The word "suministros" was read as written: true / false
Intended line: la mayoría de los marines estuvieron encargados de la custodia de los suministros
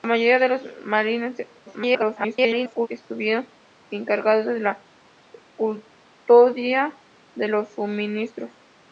true